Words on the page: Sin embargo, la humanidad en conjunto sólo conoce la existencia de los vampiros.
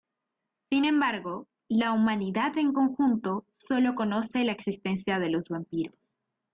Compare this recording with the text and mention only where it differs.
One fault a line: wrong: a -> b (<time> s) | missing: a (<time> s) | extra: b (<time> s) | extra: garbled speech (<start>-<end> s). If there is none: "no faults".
no faults